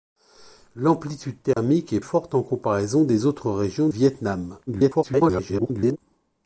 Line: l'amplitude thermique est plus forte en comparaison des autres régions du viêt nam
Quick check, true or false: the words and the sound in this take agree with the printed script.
false